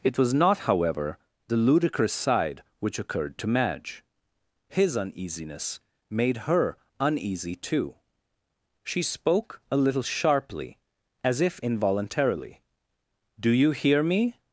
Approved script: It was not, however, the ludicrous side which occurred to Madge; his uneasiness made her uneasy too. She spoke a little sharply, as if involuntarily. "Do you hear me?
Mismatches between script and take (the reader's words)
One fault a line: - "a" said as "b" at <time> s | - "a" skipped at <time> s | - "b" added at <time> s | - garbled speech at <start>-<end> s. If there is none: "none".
none